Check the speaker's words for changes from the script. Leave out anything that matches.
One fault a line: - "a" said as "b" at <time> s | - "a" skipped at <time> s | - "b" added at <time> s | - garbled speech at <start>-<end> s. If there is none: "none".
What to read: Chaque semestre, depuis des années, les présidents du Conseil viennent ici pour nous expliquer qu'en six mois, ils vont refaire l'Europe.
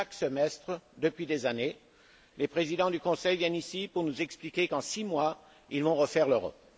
none